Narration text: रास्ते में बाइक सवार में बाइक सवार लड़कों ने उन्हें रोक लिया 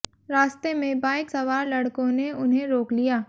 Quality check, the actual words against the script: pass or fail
fail